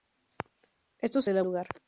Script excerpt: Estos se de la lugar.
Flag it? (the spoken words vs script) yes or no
no